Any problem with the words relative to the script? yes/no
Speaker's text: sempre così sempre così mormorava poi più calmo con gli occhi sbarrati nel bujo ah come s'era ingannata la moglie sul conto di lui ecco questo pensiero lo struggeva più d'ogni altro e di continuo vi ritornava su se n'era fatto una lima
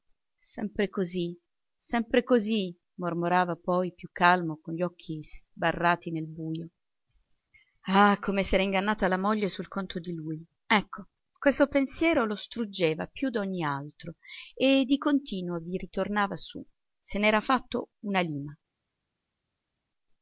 no